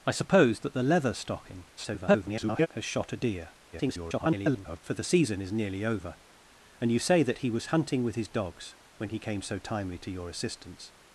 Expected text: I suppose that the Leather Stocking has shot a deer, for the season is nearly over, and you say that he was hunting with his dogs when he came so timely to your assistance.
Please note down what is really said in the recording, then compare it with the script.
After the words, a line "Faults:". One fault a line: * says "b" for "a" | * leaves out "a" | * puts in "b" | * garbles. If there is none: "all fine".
I suppose that the Leather Stocking [garbled] has shot a deer, [garbled] for the season is nearly over, and you say that he was hunting with his dogs when he came so timely to your assistance.
Faults:
* garbles
* garbles